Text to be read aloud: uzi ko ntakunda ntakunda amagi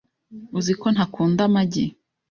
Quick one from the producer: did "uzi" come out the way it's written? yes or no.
yes